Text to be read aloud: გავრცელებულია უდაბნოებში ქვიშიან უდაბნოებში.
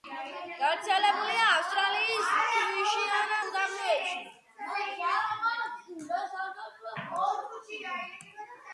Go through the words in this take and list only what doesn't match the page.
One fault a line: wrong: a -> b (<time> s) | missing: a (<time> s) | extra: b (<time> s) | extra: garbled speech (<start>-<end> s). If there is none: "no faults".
wrong: უდაბნოებში -> ავსტრალიის (1.6 s)